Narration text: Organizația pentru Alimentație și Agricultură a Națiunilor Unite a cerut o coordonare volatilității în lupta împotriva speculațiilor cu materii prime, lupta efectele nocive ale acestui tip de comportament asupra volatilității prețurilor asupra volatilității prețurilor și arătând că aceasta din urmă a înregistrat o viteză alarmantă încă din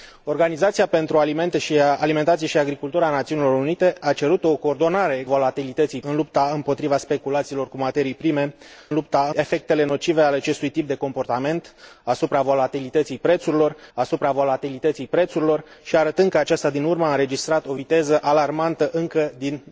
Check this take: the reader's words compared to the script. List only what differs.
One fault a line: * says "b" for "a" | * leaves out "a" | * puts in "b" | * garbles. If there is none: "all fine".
all fine